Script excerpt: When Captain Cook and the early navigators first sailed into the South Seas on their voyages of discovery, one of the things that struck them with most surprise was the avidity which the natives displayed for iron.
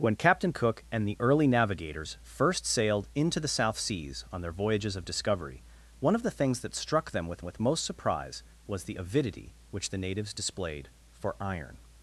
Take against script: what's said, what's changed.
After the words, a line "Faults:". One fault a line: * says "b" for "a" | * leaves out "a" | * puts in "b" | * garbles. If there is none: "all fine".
When Captain Cook and the early navigators first sailed into the South Seas on their voyages of discovery, one of the things that struck them with with most surprise was the avidity which the natives displayed for iron.
Faults:
* puts in "with"